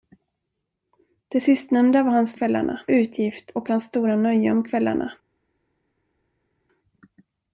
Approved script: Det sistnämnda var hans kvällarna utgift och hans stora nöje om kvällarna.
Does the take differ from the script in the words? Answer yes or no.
no